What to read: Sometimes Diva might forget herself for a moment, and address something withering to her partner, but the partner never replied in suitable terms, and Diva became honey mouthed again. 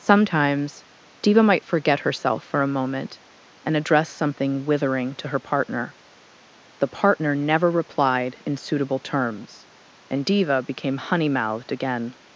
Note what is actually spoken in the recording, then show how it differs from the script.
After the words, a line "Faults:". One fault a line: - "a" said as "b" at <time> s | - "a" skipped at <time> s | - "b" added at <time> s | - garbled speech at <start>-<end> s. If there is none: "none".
Sometimes Diva might forget herself for a moment, and address something withering to her partner, the partner never replied in suitable terms, and Diva became honey mouthed again.
Faults:
- "but" skipped at 5.9 s